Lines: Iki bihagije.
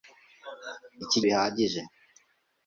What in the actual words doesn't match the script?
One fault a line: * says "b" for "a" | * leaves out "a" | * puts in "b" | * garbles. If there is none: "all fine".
all fine